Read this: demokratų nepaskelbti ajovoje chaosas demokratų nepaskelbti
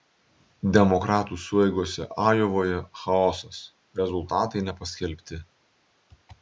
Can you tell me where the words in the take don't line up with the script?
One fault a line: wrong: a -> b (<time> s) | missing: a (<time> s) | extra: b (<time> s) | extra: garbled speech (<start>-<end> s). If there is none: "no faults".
wrong: nepaskelbti -> sueigose (1.4 s)
wrong: demokratų -> rezultatai (4.0 s)